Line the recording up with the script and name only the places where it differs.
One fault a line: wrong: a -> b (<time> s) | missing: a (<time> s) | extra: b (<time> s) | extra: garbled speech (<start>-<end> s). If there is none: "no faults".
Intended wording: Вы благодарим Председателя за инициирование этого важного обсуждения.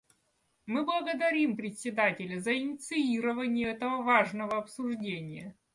wrong: Вы -> Мы (0.7 s)